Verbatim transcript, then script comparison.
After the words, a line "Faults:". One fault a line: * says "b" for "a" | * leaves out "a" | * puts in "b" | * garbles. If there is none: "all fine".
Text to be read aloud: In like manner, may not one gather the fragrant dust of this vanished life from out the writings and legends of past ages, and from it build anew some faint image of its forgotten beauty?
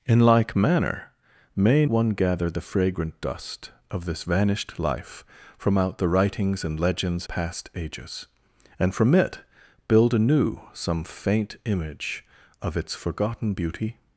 In like manner, may one gather the fragrant dust of this vanished life from out the writings and legends past ages, and from it build anew some faint image of its forgotten beauty?
Faults:
* leaves out "not"
* leaves out "of"